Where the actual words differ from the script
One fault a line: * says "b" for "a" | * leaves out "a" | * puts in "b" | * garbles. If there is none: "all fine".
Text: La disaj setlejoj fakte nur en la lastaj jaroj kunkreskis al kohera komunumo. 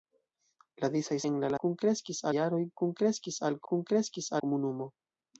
* leaves out "setlejoj fakte nur"
* says "kunkreskis" for "lastaj"
* says "kunkreskis" for "kohera"